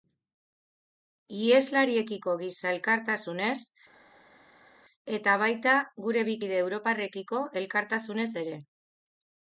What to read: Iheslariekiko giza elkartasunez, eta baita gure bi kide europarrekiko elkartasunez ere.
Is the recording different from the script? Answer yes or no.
no